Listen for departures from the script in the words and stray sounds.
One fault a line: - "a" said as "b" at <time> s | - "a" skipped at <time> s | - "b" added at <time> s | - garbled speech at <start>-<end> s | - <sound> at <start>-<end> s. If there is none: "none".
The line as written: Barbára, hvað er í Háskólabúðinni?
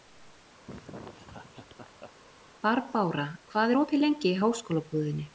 - laugh at 0.7-2.1 s
- "opið lengi" added at 3.8 s